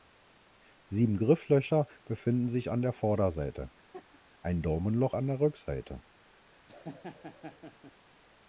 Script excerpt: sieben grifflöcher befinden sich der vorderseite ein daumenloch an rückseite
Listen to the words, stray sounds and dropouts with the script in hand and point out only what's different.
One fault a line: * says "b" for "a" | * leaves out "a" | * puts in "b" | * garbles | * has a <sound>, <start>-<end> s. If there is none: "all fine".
* puts in "an"
* has a laugh, 3.9-4.2 s
* puts in "der"
* has a laugh, 6.7-7.9 s